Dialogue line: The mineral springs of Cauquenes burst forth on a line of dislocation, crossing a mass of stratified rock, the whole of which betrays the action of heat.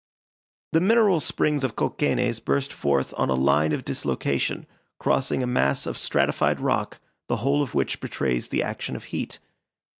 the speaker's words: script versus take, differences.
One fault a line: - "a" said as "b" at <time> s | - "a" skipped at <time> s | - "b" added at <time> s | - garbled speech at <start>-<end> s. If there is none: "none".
none